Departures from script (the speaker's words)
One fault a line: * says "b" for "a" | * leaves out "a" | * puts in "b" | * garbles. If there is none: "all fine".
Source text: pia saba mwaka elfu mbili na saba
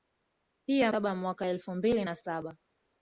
all fine